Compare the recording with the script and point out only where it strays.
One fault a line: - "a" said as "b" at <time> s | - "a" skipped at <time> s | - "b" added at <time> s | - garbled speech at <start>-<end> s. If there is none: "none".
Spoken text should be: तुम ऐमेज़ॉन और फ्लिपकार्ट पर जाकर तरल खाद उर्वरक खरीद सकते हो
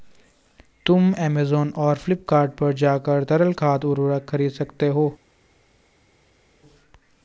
none